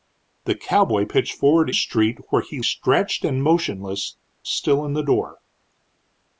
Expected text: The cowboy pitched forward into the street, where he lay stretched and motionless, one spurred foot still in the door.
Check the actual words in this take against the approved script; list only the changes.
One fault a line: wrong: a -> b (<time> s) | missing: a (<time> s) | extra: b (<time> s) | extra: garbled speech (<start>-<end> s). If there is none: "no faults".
missing: into the (1.7 s)
missing: lay (2.6 s)
missing: one spurred foot (4.2 s)